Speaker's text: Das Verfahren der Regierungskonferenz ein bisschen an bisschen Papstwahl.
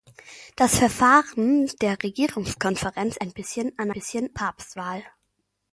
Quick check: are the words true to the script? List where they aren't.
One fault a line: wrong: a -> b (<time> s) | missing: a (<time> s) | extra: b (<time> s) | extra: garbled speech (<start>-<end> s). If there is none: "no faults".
no faults